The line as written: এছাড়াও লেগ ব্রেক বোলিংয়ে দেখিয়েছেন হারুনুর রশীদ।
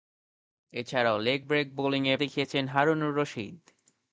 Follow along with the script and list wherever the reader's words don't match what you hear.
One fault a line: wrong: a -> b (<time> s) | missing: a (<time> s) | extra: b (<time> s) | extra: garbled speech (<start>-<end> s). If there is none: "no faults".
no faults